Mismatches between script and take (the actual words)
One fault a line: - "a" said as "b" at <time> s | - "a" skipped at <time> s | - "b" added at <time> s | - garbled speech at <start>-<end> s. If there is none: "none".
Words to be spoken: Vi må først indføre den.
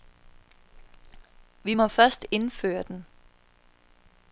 none